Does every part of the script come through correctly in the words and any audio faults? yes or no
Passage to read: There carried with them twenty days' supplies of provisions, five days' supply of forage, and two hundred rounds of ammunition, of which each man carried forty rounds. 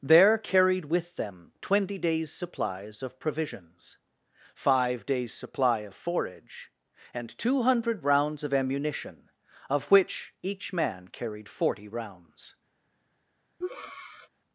no